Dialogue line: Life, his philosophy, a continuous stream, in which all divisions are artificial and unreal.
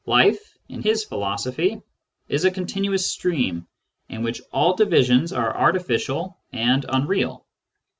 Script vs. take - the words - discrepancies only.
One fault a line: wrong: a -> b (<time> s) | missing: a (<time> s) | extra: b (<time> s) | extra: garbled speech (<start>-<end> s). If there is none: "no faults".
extra: in (0.7 s)
extra: is (2.3 s)